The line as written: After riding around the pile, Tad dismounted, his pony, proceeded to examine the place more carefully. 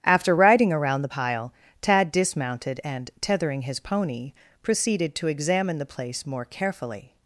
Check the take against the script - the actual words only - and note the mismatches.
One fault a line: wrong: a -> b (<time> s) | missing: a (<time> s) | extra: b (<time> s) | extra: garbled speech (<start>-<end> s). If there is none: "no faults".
extra: and tethering (2.8 s)